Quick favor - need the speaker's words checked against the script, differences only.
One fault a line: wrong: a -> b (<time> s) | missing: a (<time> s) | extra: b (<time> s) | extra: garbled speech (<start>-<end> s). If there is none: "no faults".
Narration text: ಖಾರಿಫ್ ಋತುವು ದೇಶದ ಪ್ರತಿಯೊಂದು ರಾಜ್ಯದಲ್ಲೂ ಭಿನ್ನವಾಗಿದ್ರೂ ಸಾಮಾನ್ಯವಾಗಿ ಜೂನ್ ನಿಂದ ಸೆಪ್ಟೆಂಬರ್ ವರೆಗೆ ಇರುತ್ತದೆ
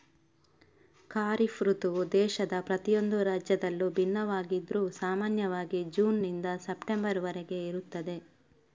no faults